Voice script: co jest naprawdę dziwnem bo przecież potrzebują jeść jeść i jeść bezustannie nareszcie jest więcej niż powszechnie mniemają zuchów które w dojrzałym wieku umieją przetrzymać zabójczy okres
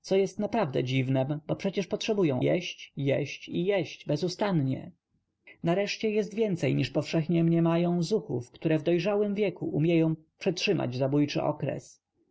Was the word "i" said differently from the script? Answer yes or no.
no